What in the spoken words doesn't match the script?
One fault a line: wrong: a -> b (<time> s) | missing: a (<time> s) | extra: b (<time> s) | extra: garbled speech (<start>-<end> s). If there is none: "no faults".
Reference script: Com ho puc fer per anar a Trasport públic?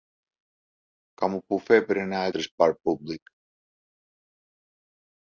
no faults